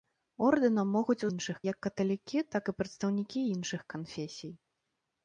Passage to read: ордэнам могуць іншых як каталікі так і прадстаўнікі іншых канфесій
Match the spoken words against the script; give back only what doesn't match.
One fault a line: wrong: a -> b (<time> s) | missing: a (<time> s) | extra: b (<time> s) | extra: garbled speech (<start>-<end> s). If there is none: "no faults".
no faults